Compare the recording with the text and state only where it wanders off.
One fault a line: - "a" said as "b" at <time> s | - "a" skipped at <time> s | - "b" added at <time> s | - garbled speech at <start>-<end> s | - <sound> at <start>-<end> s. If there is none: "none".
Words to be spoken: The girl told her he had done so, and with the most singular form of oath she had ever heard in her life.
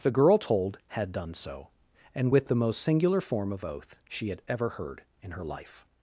- "her he" skipped at 0.8 s